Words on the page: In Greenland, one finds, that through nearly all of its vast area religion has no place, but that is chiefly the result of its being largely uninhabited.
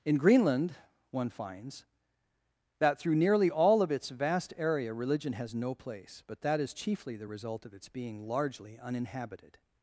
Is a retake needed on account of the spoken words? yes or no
no